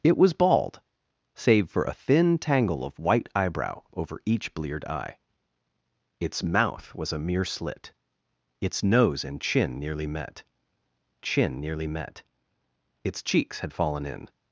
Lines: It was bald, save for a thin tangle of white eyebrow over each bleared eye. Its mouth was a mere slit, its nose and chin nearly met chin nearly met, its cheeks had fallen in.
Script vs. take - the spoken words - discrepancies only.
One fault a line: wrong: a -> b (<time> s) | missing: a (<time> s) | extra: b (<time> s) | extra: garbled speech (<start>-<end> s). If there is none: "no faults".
no faults